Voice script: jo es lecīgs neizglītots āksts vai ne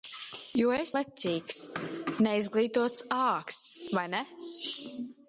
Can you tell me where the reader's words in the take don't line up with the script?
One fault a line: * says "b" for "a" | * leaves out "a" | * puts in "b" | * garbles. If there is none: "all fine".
all fine